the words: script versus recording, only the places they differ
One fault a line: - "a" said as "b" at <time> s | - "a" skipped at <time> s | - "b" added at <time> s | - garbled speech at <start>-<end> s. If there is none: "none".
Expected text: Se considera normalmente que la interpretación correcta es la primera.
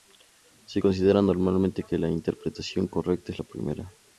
none